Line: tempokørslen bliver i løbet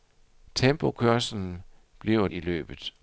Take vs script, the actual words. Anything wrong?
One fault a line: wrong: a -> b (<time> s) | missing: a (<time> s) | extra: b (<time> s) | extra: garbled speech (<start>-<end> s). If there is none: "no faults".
no faults